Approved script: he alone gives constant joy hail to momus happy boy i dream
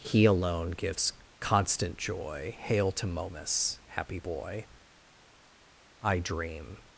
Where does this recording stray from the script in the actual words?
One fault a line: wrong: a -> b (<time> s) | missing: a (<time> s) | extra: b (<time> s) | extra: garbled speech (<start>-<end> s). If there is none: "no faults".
no faults